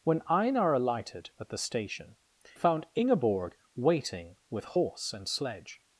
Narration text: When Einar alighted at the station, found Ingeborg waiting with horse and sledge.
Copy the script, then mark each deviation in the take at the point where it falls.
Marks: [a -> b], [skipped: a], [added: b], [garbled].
When Einar alighted at the station, found Ingeborg waiting with horse and sledge.